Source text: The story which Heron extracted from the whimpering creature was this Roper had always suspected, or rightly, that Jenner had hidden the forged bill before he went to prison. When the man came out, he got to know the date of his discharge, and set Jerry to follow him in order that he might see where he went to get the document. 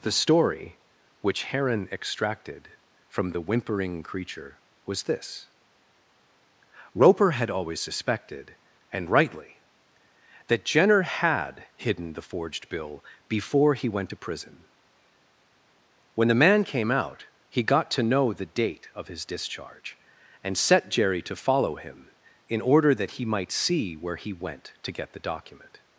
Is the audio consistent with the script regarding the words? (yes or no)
no